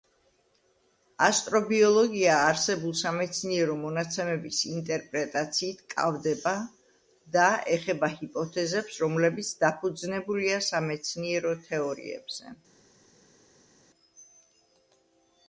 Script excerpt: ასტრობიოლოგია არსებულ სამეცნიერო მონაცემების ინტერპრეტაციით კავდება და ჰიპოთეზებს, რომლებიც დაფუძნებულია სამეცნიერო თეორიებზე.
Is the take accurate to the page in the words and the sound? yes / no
no